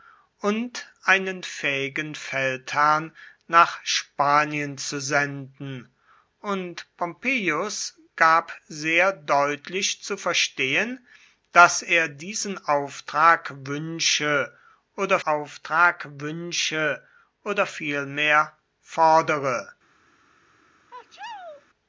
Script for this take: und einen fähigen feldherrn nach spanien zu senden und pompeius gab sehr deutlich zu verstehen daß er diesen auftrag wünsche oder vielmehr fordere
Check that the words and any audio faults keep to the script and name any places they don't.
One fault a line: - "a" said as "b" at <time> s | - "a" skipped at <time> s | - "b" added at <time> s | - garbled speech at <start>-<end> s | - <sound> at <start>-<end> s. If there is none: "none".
- "auftrag wünsche oder" added at 15.2 s
- sneeze at 20.9-21.7 s